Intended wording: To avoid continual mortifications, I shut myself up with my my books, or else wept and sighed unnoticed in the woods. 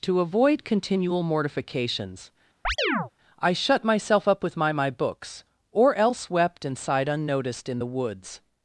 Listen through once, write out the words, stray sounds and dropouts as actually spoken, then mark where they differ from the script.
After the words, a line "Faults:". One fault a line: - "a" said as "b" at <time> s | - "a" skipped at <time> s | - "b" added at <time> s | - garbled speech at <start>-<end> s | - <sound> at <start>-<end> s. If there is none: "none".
To avoid continual mortifications, I shut myself up with my my books, or else wept and sighed unnoticed in the woods.
Faults:
- chirp at 2.6-3.1 s